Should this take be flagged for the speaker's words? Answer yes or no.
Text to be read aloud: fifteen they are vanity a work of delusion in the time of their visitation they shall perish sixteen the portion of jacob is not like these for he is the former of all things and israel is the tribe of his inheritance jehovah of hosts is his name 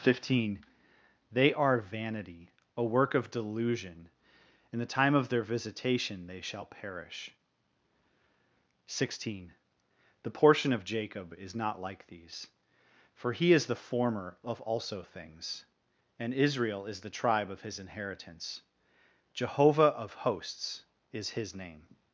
yes